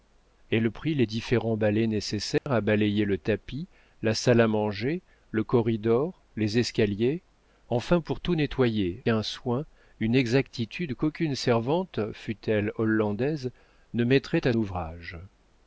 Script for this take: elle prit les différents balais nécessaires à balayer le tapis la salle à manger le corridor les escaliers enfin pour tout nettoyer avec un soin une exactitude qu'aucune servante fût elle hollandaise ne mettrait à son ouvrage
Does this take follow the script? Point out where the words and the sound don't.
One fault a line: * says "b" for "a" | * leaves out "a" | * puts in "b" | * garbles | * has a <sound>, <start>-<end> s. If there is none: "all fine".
* has a dropout, 2.4-2.5 s
* leaves out "avec"
* leaves out "son"